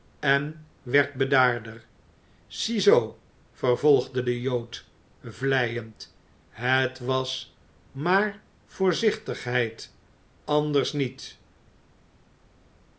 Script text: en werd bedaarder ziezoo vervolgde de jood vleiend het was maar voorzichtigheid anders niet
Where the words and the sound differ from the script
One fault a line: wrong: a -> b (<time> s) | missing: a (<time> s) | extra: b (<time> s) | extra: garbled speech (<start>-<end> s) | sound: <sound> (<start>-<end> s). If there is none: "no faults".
no faults